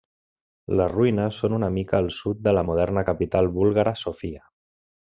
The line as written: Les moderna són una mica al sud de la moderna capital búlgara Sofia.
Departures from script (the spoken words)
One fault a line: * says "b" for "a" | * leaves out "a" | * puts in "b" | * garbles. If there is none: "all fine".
* says "ruïnes" for "moderna"